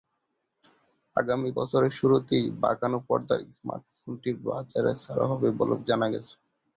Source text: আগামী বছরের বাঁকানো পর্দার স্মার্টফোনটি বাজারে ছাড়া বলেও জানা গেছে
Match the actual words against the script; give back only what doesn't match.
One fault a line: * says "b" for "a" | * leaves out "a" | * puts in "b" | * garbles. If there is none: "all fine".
* puts in "শুরুতেই"
* puts in "হবে"